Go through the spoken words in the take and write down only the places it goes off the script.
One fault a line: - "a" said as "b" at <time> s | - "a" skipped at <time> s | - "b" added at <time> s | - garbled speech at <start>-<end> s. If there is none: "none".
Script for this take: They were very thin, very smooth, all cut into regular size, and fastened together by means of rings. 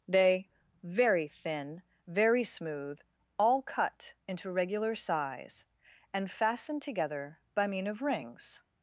- "were" skipped at 0.5 s
- "means" said as "mean" at 7.7 s